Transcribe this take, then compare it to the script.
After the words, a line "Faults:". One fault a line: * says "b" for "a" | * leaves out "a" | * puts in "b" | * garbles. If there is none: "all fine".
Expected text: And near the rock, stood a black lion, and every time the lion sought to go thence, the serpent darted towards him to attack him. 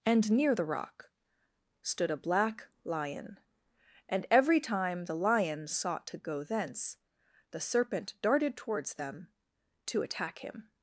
And near the rock, stood a black lion, and every time the lion sought to go thence, the serpent darted towards them to attack him.
Faults:
* says "them" for "him"